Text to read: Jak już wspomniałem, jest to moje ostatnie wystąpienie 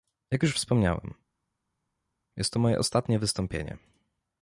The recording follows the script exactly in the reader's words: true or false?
true